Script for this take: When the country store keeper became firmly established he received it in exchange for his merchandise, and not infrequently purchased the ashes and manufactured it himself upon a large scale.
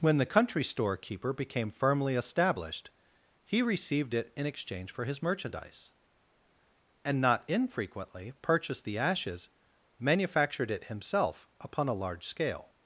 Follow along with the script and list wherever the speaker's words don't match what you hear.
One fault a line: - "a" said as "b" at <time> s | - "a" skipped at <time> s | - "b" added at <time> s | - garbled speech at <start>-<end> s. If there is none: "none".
- "and" skipped at 9.5 s